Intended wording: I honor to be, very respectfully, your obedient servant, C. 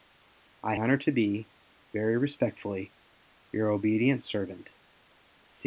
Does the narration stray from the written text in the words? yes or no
no